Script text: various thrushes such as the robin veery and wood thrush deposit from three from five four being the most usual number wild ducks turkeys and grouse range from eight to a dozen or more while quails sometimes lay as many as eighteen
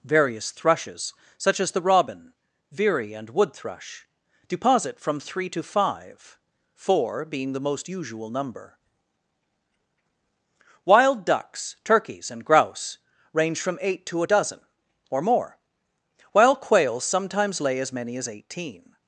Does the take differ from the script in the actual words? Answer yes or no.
yes